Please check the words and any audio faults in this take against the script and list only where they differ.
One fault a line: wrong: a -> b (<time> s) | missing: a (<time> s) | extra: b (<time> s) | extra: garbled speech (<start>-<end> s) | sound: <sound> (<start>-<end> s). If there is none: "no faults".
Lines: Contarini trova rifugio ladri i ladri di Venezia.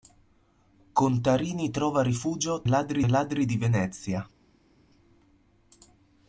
no faults